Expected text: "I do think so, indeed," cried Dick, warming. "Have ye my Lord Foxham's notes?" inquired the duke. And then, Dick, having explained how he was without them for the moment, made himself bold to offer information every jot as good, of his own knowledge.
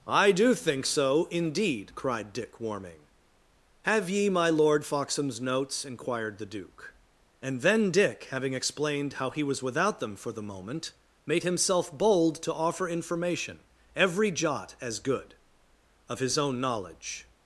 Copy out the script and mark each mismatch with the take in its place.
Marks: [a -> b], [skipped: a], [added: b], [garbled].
"I do think so, indeed," cried Dick, warming. "Have ye my Lord Foxham's notes?" inquired the duke. And then, Dick, having explained how he was without them for the moment, made himself bold to offer information every jot as good, of his own knowledge.